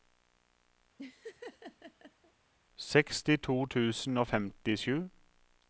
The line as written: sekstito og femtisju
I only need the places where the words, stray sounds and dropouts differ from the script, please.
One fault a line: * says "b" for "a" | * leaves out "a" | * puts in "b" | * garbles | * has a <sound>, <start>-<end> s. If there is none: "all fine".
* has a laugh, 1.0-2.3 s
* puts in "tusen"